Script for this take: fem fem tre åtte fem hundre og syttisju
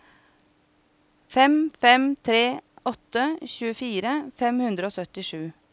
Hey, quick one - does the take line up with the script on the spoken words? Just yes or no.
no